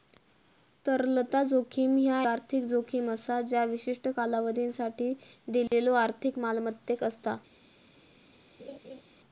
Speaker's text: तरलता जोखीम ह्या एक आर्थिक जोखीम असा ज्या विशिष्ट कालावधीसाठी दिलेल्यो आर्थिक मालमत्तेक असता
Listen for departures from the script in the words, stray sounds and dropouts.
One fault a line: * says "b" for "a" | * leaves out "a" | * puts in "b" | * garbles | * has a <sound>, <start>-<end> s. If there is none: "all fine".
* leaves out "एक"
* has a dropout, 5.7-5.7 s
* has a laugh, 8.6-9.0 s